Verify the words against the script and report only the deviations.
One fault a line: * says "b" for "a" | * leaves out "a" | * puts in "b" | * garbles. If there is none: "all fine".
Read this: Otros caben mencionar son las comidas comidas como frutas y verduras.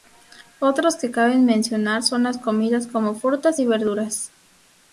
* puts in "que"
* leaves out "comidas"